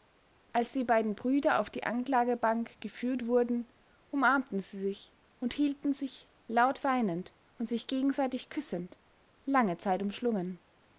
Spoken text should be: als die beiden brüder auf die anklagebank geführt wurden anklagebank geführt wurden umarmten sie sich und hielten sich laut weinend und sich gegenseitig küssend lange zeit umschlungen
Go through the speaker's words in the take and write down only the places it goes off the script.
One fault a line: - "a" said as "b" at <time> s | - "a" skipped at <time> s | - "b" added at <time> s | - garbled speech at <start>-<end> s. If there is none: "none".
- "anklagebank geführt wurden" skipped at 3.7 s